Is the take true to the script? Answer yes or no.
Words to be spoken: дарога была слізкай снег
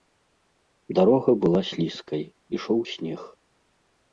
no